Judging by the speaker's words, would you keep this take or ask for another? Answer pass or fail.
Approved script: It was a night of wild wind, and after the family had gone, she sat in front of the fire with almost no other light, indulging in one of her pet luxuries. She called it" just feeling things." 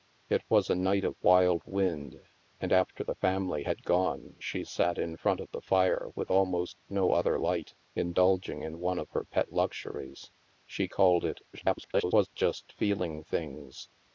fail